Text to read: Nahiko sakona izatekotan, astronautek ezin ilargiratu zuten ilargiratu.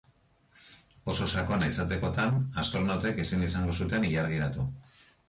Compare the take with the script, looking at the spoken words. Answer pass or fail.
fail